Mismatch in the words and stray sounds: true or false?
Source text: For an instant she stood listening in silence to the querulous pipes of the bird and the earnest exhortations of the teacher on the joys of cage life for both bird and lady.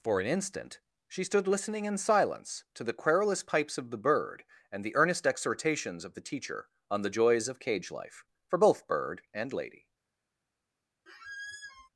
true